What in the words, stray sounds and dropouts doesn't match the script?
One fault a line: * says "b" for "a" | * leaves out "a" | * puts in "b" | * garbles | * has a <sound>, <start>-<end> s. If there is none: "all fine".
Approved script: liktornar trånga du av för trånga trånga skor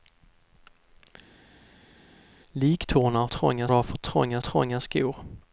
all fine